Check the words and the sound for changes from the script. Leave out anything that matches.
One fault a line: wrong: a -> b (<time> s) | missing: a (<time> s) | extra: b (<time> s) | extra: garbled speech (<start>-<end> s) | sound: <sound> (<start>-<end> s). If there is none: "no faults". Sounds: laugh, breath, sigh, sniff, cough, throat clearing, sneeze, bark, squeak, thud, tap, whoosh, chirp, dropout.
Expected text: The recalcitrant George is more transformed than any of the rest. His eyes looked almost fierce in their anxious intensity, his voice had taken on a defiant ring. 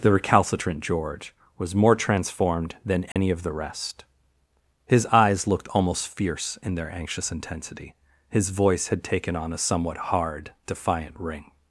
wrong: is -> was (1.6 s)
sound: dropout (3.1-3.2 s)
extra: somewhat hard (9.6 s)